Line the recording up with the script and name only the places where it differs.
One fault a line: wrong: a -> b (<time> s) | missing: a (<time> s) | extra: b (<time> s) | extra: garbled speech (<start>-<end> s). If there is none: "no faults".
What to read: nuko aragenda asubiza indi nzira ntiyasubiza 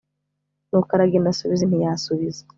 missing: indi nzira (1.6 s)